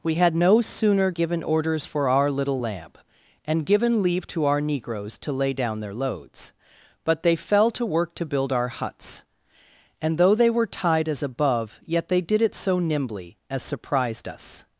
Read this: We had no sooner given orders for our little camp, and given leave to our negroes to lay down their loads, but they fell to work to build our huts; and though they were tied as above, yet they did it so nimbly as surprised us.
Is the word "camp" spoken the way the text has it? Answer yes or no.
no